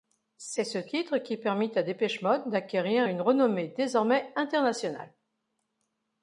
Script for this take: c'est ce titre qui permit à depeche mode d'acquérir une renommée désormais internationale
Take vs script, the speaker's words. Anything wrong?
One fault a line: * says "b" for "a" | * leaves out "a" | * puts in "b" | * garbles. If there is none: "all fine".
all fine